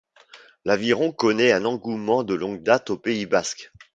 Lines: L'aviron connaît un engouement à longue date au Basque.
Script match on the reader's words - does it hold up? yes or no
no